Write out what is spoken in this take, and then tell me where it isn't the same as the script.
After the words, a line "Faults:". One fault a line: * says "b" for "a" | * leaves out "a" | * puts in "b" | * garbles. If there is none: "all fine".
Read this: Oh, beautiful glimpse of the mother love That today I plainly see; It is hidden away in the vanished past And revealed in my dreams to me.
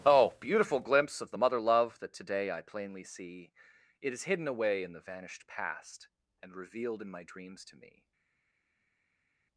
Oh, beautiful glimpse of the mother love That today I plainly see; It is hidden away in the vanished past And revealed in my dreams to me.
Faults:
all fine